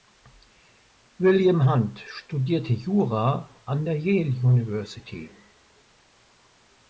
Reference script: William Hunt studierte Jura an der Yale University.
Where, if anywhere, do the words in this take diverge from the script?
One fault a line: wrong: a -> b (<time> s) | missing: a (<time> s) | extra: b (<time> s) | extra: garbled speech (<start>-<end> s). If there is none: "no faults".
no faults